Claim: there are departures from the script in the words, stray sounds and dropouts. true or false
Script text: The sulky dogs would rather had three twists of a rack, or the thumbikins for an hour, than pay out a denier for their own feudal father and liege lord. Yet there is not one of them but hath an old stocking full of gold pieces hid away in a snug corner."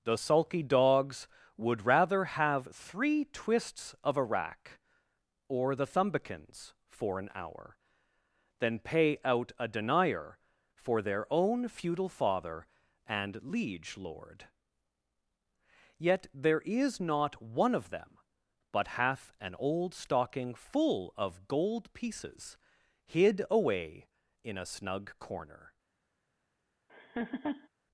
true